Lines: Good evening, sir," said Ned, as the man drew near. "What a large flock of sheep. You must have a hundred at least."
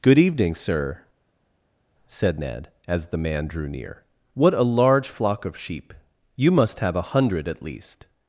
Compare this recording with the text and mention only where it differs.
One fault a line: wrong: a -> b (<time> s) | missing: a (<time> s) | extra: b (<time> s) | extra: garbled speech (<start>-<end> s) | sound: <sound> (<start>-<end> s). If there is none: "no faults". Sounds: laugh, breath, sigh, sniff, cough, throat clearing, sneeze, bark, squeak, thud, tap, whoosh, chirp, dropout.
no faults